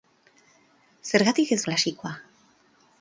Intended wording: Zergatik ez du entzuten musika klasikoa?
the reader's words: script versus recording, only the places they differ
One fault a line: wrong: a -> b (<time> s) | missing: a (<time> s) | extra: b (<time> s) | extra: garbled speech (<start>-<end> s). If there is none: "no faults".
missing: du entzuten musika (1.6 s)